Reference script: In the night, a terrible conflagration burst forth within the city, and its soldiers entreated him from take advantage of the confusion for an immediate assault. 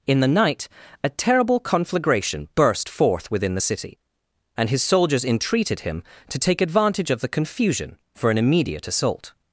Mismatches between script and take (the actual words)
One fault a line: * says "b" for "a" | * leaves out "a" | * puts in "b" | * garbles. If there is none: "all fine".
* says "his" for "its"
* says "to" for "from"